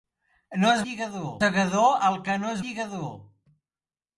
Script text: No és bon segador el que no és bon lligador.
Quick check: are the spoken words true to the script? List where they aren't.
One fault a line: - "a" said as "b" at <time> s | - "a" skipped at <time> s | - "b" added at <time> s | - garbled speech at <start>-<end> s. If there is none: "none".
- "bon" said as "lligador" at 0.9 s
- "bon" skipped at 2.6 s